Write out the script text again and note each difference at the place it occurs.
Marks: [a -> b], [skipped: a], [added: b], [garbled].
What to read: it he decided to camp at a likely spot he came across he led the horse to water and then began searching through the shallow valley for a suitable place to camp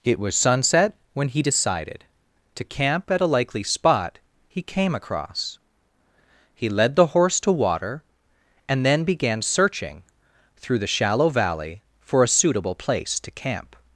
it [added: was sunset when] he decided to camp at a likely spot he came across he led the horse to water and then began searching through the shallow valley for a suitable place to camp